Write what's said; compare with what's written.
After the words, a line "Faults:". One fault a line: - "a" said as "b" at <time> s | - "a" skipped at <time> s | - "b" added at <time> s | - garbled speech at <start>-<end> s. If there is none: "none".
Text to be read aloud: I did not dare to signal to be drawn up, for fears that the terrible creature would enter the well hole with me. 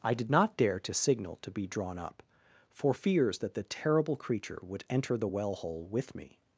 I did not dare to signal to be drawn up, for fears that the terrible creature would enter the well hole with me.
Faults:
none